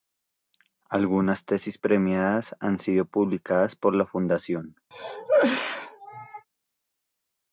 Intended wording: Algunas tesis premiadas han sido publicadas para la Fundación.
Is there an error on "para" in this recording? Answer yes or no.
yes